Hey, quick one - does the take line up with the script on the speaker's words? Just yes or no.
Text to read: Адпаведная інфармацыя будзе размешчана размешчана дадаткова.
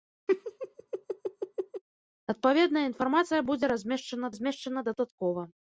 yes